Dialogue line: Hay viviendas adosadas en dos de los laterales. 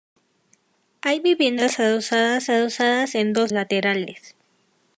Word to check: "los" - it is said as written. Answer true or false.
false